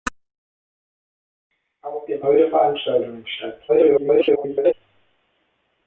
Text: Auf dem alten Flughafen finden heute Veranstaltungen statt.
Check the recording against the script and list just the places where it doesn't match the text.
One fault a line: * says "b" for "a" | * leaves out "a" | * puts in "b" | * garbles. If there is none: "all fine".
* leaves out "alten Flughafen finden"
* garbles